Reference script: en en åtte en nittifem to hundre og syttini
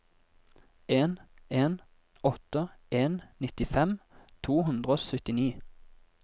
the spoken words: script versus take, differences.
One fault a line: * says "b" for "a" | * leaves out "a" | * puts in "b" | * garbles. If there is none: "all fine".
all fine